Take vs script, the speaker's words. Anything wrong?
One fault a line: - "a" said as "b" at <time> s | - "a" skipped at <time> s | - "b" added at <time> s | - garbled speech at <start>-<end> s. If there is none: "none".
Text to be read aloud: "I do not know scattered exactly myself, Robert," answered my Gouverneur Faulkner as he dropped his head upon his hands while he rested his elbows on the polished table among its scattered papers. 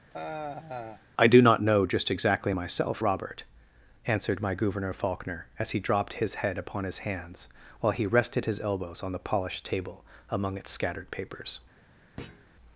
- "scattered" said as "just" at 1.9 s